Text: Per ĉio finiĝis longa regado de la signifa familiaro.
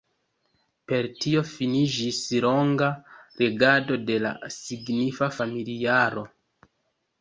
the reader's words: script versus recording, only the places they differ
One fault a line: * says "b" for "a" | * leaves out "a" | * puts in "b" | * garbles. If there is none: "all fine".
* says "tio" for "ĉio"